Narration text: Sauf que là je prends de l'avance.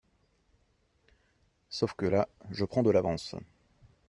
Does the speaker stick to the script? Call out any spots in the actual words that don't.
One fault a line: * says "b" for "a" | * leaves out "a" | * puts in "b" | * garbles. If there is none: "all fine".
all fine